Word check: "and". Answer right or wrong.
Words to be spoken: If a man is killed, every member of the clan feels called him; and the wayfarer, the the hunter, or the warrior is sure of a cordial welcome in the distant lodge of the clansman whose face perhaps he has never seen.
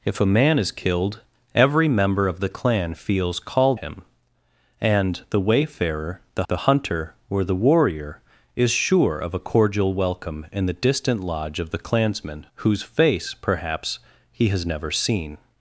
right